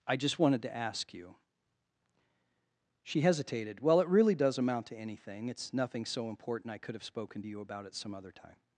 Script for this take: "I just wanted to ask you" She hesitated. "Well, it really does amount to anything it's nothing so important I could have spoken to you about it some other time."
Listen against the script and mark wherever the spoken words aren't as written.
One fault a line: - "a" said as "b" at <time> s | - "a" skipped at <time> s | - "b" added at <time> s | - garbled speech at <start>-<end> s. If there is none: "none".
none